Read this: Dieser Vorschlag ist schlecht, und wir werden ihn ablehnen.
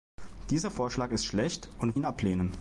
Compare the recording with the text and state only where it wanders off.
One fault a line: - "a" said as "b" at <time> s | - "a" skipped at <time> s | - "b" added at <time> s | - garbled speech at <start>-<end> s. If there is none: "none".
- "wir werden" skipped at 2.0 s